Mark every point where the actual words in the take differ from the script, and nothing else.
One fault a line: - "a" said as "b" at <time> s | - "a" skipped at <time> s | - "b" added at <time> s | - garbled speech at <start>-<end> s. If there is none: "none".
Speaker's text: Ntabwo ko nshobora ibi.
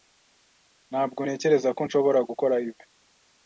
- "ntekereza" added at 1.2 s
- "gukora" added at 2.3 s